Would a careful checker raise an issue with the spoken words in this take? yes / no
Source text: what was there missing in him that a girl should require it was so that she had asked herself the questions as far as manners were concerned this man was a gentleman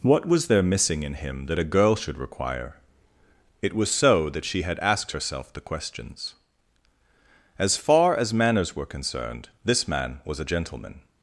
no